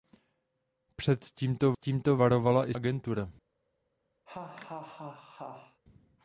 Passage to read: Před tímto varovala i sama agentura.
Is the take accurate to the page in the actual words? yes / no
no